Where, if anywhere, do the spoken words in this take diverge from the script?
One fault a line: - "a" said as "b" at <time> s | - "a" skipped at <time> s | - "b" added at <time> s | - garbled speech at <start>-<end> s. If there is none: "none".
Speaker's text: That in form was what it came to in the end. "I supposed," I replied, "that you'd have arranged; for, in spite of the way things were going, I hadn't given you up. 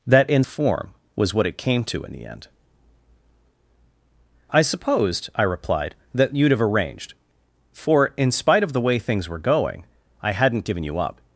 none